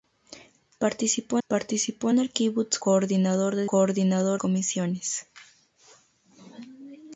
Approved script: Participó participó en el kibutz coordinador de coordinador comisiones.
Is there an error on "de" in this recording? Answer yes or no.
no